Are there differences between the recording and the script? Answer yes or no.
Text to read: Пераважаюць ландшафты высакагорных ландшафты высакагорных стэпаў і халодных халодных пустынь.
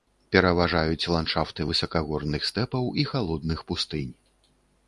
yes